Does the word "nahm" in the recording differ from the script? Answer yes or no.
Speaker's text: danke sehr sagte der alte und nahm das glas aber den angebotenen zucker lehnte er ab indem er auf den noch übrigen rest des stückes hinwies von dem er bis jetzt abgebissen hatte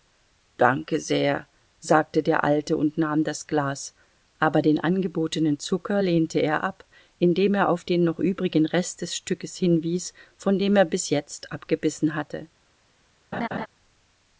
no